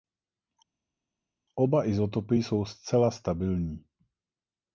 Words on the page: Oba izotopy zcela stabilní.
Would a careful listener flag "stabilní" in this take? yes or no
no